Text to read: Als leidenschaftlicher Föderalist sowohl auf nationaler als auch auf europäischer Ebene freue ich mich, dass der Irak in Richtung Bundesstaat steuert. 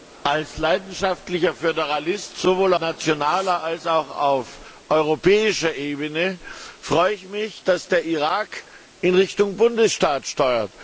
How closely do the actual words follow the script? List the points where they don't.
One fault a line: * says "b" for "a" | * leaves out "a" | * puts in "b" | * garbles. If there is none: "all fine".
* leaves out "auf"